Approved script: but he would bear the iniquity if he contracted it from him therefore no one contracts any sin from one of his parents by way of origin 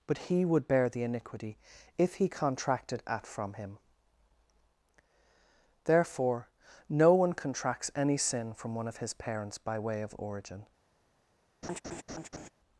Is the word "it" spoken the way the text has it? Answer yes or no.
no